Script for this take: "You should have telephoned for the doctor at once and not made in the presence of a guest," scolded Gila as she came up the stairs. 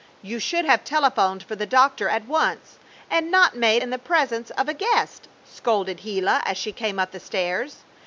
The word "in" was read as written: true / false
true